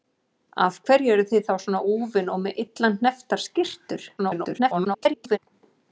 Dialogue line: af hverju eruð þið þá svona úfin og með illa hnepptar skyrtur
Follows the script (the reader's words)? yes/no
no